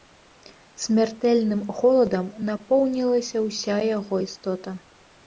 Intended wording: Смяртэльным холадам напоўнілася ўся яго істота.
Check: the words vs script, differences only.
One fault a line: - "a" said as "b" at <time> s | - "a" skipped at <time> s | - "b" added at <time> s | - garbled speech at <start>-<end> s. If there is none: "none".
none